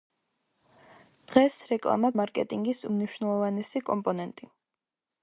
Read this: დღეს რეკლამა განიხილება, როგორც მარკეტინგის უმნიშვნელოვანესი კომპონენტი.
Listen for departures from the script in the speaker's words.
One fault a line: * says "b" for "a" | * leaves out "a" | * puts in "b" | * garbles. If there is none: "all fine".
* leaves out "განიხილება როგორც"